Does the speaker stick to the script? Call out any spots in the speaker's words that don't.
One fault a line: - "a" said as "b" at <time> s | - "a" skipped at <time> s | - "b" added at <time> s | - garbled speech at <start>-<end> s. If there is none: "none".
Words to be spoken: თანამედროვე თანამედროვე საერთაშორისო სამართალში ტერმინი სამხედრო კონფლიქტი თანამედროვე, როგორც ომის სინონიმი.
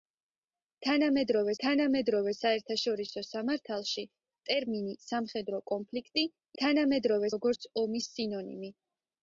none